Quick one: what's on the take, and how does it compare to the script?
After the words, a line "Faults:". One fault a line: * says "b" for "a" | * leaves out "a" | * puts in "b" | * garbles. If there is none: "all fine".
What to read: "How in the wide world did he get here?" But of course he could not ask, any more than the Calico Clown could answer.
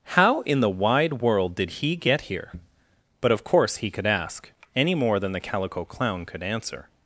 "How in the wide world did he get here?" But of course he could ask, any more than the Calico Clown could answer.
Faults:
* leaves out "not"